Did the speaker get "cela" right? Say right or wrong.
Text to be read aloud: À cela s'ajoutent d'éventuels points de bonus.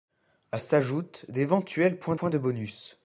wrong